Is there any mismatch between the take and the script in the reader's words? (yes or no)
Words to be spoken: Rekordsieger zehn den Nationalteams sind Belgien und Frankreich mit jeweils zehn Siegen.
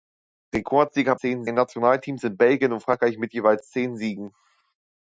no